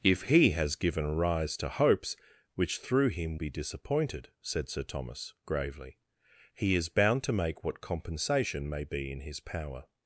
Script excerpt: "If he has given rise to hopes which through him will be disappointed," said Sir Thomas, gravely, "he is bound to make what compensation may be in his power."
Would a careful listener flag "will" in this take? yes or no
yes